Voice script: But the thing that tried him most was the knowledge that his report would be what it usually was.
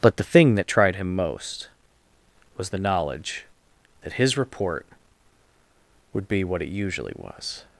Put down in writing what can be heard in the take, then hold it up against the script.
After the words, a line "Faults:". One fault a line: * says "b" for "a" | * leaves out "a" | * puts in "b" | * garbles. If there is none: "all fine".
But the thing that tried him most was the knowledge that his report would be what it usually was.
Faults:
all fine